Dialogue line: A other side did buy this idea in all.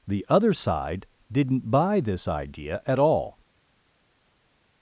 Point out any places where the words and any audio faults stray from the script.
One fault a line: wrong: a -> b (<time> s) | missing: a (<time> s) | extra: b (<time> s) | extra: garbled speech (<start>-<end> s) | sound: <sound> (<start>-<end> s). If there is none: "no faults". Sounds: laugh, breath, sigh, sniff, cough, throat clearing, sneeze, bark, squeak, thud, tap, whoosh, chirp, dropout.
wrong: A -> The (0.1 s)
wrong: did -> didn't (1.3 s)
wrong: in -> at (2.9 s)